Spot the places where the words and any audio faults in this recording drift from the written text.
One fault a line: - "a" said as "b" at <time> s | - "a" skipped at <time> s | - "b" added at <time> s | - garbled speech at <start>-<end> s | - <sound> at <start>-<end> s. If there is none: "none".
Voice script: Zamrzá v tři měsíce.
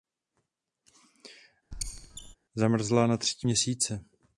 - squeak at 1.7-2.4 s
- "v" said as "na" at 3.1 s